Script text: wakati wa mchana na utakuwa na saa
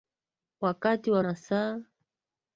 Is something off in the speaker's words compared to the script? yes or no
yes